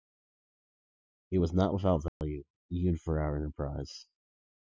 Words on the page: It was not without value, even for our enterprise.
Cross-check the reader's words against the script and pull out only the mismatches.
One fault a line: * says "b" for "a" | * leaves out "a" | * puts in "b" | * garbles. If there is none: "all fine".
all fine